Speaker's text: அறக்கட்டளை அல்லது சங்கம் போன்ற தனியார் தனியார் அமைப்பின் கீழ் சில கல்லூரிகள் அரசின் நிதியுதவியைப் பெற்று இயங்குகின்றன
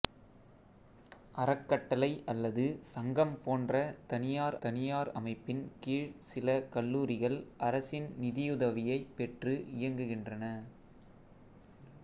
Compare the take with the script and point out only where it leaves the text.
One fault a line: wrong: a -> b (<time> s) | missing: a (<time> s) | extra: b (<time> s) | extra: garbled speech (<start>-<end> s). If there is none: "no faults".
no faults